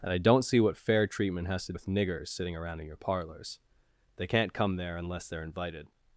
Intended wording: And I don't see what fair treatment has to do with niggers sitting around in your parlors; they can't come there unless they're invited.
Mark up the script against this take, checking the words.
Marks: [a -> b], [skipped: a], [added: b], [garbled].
And I don't see what fair treatment has to [skipped: do] with niggers sitting around in your parlors; they can't come there unless they're invited.